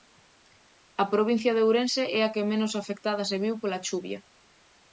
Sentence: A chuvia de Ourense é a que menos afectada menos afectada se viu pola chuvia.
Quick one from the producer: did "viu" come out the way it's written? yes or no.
yes